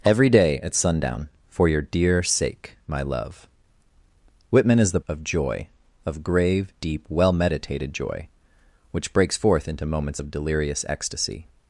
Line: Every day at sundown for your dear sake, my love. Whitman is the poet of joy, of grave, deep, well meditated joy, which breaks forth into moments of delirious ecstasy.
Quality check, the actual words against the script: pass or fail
fail